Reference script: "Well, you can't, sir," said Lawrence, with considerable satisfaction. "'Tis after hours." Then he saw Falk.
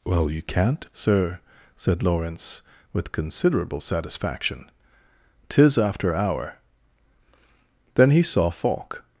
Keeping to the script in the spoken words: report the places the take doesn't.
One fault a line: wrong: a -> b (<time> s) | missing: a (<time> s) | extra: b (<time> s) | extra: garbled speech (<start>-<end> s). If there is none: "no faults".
wrong: hours -> hour (6.2 s)